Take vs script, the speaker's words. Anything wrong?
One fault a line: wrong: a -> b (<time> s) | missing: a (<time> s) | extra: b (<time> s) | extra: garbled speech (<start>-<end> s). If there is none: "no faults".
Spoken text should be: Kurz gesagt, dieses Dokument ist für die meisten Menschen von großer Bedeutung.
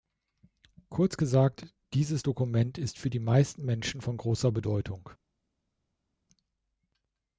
no faults